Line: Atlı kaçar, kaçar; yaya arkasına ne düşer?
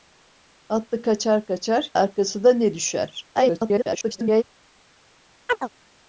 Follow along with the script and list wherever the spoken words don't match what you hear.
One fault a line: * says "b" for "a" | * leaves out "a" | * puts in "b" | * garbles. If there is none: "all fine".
* leaves out "yaya"
* garbles